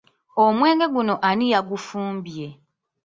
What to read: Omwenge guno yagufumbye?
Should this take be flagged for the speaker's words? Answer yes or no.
yes